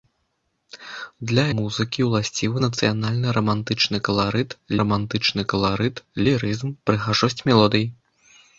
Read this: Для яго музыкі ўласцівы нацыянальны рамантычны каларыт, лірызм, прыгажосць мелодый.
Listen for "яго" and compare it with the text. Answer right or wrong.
wrong